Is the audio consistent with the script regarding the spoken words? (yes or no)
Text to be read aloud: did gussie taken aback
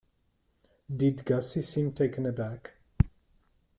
no